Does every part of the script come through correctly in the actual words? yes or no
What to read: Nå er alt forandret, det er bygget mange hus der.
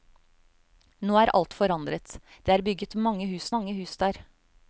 no